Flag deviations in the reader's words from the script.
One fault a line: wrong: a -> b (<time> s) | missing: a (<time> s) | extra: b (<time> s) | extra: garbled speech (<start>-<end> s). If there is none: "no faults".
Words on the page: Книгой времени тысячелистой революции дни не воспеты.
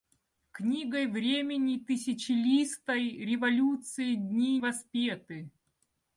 missing: не (4.6 s)